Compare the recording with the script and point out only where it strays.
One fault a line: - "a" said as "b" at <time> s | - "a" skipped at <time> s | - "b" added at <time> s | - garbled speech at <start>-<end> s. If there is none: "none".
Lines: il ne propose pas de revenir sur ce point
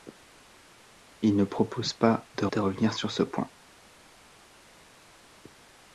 - "de" added at 2.5 s